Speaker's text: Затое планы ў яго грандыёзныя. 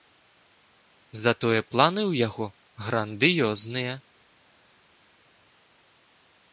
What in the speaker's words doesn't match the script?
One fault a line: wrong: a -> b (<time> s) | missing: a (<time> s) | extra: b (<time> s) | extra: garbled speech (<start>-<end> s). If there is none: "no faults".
no faults